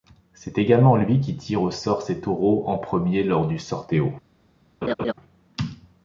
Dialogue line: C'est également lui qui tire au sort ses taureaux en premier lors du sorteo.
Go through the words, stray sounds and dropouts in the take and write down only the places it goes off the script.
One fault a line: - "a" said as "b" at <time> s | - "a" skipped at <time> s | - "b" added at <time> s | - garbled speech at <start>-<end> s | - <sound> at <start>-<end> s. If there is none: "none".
- laugh at 4.8-5.1 s